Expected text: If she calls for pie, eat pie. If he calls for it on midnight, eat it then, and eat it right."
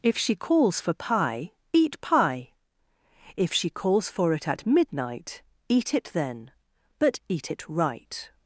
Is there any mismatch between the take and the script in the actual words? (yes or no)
yes